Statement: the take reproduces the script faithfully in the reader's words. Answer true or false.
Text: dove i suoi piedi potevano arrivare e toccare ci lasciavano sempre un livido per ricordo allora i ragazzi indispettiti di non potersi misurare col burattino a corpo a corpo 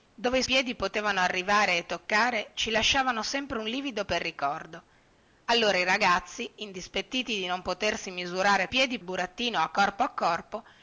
false